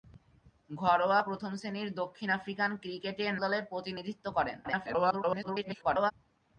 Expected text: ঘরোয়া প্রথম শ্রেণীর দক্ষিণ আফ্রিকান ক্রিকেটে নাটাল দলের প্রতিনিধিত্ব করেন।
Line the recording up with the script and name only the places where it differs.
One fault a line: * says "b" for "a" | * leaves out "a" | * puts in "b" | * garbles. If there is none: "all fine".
* leaves out "নাটাল"
* garbles